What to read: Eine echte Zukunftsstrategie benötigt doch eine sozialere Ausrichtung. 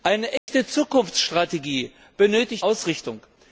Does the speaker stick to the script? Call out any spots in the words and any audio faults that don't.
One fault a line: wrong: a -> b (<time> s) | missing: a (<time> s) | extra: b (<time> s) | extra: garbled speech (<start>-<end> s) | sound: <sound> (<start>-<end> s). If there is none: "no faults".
sound: dropout (0.4-0.5 s)
missing: doch eine sozialere (2.7 s)